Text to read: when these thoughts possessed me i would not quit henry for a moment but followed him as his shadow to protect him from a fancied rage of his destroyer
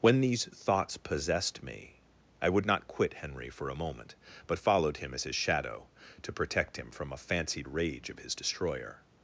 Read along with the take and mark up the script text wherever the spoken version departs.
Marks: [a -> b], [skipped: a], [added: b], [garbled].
when these thoughts possessed me i would not quit henry for a moment but followed him as his shadow to protect him from a fancied rage of his destroyer